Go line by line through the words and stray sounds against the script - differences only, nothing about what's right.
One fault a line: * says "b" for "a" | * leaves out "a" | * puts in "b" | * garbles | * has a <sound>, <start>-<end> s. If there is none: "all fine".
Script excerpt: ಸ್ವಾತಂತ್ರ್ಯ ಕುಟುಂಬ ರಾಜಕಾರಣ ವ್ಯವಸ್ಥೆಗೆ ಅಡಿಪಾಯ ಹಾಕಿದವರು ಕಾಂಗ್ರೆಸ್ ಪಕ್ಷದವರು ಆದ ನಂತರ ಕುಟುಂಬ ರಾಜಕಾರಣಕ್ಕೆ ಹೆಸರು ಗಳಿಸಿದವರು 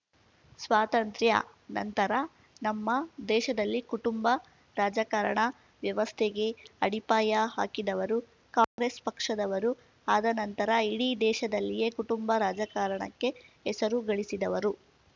* puts in "ನಂತರ ನಮ್ಮ ದೇಶದಲ್ಲಿ"
* has a dropout, 8.6-8.8 s
* puts in "ಇಡೀ ದೇಶದಲ್ಲಿಯೇ"